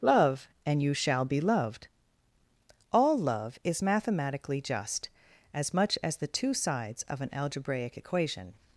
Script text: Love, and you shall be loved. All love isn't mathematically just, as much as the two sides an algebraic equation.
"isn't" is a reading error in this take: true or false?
true